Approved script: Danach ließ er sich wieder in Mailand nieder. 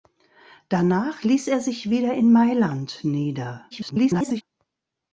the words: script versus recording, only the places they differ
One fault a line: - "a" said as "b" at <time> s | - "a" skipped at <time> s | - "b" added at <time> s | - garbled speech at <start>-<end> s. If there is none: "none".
- garbled speech at 3.7-4.4 s